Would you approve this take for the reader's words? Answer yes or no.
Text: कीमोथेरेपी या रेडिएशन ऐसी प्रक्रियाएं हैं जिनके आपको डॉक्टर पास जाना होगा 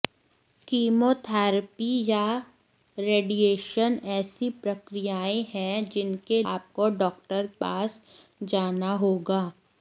yes